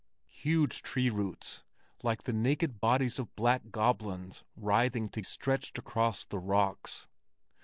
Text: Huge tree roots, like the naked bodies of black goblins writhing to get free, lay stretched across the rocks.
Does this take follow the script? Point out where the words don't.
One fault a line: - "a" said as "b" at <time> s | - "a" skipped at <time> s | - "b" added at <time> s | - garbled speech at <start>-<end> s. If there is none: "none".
- "get free lay" skipped at 5.2 s